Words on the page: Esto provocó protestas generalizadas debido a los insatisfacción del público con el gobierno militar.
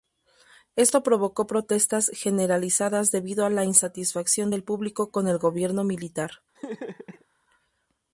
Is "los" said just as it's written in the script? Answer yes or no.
no